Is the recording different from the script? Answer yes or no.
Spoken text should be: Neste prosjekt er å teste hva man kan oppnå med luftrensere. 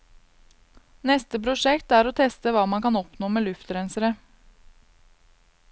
no